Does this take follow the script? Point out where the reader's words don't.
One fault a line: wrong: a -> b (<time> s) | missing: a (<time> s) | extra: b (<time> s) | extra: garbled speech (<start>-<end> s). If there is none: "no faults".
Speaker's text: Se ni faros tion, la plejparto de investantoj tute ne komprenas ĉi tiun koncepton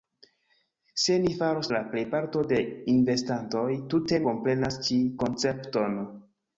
missing: tion (1.7 s)
missing: ne (4.2 s)
missing: tiun (5.0 s)